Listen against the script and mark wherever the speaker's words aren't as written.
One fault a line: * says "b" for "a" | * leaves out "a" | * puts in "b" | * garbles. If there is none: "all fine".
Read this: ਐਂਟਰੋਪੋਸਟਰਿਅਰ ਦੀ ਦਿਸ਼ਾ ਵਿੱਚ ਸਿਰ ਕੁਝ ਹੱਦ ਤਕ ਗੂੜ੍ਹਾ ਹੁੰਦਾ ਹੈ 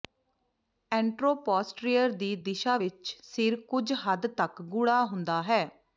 all fine